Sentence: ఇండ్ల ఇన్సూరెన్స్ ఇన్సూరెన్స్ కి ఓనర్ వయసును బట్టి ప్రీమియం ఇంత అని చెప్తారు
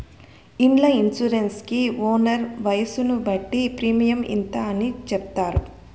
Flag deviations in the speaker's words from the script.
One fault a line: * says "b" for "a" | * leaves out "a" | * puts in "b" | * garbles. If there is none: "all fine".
* leaves out "ఇన్సూరెన్స్"